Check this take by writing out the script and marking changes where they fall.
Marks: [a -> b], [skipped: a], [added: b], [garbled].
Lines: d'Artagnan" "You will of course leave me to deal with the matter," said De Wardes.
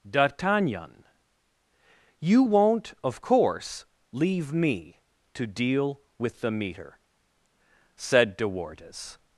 d'Artagnan" "You [will -> won't] of course leave me to deal with the [matter," -> meter] said De Wardes.